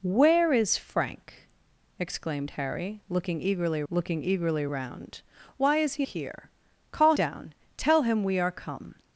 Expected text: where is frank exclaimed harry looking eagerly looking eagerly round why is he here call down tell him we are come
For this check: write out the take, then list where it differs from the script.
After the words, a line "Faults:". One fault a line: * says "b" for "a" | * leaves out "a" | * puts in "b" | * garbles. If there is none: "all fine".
where is frank exclaimed harry looking eagerly looking eagerly round why is he here call down tell him we are come
Faults:
all fine